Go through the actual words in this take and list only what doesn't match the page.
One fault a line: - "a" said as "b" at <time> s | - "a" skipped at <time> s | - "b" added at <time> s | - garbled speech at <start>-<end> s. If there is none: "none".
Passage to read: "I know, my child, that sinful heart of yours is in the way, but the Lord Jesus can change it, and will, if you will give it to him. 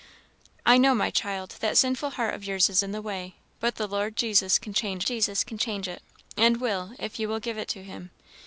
- "Jesus can change" added at 5.0 s